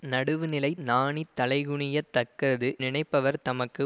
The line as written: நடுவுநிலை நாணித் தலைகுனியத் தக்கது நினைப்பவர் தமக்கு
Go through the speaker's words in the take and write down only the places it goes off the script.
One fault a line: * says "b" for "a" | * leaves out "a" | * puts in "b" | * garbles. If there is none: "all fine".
all fine